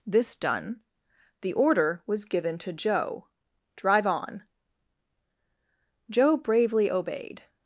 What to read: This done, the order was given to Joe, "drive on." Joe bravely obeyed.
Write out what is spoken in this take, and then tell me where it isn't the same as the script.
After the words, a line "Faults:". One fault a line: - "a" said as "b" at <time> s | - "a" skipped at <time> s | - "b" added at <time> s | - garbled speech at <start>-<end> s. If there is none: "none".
This done, the order was given to Joe, "drive on." Joe bravely obeyed.
Faults:
none